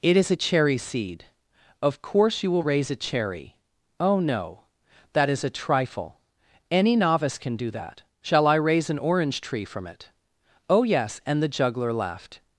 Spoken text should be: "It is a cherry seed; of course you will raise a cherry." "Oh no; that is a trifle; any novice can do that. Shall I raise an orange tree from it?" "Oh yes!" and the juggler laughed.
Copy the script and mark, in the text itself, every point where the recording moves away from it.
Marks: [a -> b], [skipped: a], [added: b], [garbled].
"It is a cherry seed; of course you will raise a cherry." "Oh no; that is a trifle; any novice can do that. Shall I raise an orange tree from it?" "Oh yes!" and the juggler laughed.